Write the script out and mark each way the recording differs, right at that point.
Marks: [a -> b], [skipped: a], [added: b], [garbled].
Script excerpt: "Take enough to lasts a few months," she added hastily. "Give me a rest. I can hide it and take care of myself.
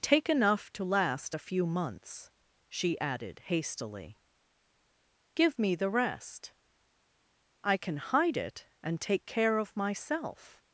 "Take enough to [lasts -> last] a few months," she added hastily. "Give me [a -> the] rest. I can hide it and take care of myself.